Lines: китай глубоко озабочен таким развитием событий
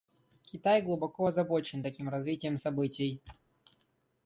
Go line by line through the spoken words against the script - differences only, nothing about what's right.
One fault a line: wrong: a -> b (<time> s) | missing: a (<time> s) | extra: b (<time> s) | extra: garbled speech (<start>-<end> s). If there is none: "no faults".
no faults